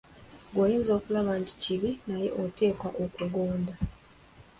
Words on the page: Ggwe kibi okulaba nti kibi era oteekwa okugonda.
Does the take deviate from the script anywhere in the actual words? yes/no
yes